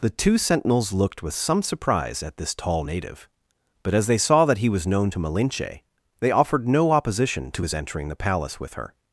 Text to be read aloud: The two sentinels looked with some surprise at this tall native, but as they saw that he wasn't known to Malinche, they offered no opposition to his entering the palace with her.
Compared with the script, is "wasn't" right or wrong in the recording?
wrong